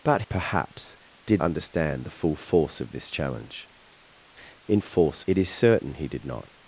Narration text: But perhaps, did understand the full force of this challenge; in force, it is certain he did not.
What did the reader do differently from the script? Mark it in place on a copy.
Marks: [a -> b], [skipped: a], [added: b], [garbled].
But perhaps, did understand the full force of this challenge; in force, it is certain he did not.